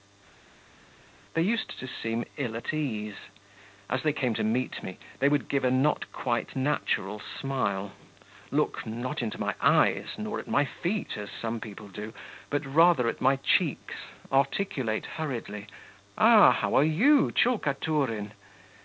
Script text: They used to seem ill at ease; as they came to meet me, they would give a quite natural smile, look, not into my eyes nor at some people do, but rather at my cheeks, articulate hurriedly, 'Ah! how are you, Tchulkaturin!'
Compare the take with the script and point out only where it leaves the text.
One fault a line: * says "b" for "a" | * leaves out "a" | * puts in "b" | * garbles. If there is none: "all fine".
* puts in "not"
* puts in "my feet as"